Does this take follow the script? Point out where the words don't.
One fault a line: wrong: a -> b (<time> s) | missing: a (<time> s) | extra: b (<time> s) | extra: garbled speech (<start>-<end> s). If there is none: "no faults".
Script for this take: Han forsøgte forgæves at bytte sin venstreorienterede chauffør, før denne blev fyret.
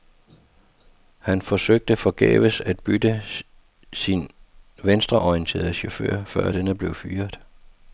no faults